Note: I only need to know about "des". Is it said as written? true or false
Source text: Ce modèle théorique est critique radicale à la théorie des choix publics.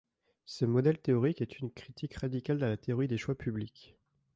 true